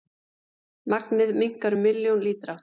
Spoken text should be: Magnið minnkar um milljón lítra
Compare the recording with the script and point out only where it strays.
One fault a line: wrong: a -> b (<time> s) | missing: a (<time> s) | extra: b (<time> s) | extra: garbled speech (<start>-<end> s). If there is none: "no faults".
no faults